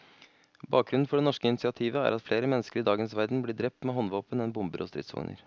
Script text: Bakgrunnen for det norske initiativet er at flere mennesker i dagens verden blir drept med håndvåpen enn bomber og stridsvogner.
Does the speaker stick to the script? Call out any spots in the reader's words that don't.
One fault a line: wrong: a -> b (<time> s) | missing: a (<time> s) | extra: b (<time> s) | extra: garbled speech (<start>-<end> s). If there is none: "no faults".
no faults